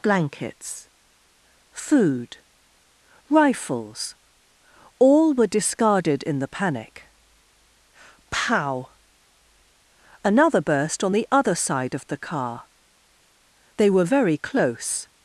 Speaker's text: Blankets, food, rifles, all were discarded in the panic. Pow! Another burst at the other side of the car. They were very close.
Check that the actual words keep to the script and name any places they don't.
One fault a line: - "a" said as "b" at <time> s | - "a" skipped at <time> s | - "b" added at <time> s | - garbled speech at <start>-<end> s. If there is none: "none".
- "at" said as "on" at 11.0 s